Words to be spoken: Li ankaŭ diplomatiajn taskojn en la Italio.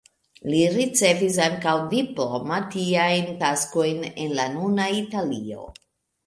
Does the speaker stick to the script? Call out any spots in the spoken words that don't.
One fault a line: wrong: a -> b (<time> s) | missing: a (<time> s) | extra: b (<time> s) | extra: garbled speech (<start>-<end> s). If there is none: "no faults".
extra: ricevis (0.8 s)
extra: nuna (4.5 s)